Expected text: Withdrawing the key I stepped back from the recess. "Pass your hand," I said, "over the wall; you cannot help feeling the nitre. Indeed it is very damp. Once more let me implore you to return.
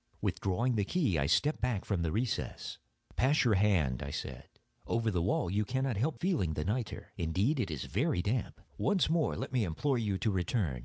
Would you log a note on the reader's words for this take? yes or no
no